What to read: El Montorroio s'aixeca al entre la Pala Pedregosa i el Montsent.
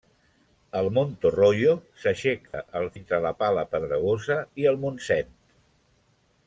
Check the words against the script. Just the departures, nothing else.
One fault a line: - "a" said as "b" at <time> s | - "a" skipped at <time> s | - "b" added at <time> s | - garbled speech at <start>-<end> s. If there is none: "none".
none